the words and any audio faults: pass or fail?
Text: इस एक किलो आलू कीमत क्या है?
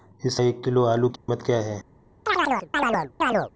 fail